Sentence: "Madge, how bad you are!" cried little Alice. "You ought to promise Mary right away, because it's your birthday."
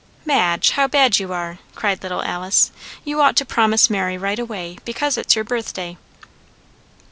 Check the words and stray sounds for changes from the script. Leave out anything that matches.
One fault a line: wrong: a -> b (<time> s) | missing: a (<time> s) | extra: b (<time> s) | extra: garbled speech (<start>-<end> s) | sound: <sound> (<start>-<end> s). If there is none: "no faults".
no faults